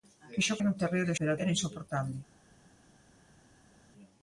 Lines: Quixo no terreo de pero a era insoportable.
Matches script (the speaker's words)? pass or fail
pass